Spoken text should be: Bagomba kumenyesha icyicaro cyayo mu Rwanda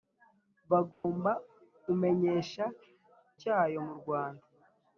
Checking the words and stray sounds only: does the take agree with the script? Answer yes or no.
no